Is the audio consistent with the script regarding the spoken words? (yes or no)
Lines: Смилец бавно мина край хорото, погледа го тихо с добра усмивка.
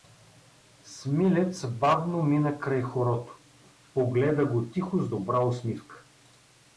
yes